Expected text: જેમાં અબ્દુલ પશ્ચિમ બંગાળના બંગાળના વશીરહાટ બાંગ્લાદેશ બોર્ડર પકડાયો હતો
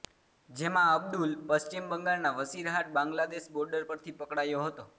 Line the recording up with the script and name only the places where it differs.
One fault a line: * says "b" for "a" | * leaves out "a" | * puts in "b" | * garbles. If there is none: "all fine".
* leaves out "બંગાળના"
* puts in "પરથી"